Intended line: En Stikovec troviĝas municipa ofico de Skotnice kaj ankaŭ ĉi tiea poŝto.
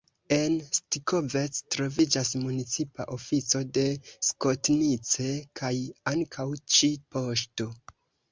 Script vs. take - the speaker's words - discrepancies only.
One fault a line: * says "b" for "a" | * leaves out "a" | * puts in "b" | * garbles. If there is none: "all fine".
* leaves out "tiea"